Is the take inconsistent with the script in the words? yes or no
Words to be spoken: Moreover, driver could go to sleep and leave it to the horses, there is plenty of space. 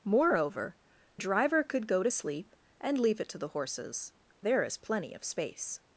no